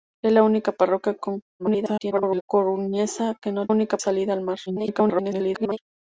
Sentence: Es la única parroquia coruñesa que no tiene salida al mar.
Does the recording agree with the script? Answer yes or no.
no